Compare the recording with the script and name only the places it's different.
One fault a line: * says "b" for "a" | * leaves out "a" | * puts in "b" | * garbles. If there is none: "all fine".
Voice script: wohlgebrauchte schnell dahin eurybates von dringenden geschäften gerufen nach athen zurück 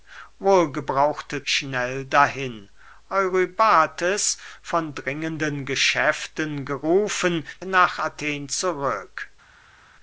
all fine